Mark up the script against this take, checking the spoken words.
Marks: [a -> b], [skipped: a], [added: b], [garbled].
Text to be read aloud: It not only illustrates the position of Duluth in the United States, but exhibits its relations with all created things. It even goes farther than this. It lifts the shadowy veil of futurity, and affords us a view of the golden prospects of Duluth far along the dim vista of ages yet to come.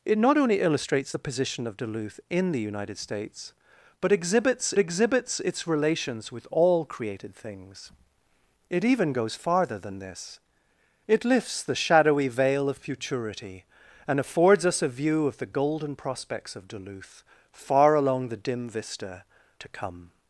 It not only illustrates the position of Duluth in the United States, but exhibits [added: exhibits] its relations with all created things. It even goes farther than this. It lifts the shadowy veil of futurity, and affords us a view of the golden prospects of Duluth far along the dim vista [skipped: of ages yet] to come.